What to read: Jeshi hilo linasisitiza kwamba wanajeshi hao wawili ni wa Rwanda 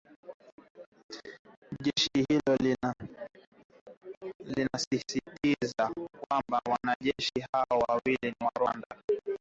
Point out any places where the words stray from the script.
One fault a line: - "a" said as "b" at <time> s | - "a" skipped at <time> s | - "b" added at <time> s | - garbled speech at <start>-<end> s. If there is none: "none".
none